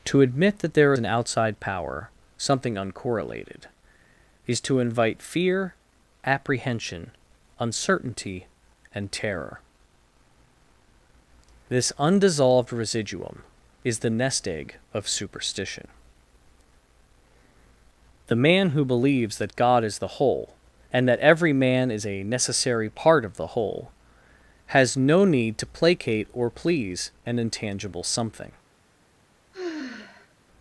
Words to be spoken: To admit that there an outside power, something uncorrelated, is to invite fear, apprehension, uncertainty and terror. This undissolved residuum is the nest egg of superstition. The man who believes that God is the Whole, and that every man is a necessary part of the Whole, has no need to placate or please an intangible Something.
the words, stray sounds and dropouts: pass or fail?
fail